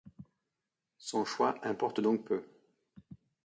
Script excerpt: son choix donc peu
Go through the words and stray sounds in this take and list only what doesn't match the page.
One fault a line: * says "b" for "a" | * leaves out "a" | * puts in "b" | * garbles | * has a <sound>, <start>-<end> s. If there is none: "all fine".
* puts in "importe"